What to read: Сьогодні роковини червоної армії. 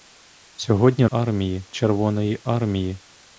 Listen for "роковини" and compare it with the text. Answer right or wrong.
wrong